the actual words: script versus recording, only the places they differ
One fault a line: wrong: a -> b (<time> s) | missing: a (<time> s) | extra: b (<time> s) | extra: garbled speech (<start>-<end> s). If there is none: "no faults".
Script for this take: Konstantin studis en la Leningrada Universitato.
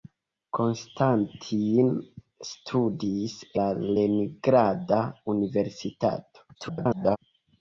missing: en (3.4 s)
extra: garbled speech (6.5-7.2 s)